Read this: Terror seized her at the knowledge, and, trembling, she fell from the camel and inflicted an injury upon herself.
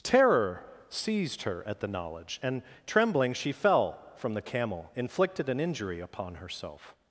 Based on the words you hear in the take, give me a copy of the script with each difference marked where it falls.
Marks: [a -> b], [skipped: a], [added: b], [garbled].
Terror seized her at the knowledge, and, trembling, she fell from the camel [skipped: and] inflicted an injury upon herself.